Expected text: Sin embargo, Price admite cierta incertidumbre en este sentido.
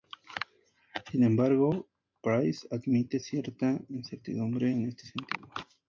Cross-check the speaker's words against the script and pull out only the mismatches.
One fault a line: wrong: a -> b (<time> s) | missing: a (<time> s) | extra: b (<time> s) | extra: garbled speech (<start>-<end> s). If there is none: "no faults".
no faults